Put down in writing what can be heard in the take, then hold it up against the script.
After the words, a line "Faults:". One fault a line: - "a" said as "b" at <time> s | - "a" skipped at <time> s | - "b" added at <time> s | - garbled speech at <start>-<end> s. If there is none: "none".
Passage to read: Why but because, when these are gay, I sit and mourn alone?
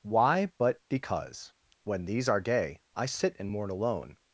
Why but because, when these are gay, I sit and mourn alone?
Faults:
none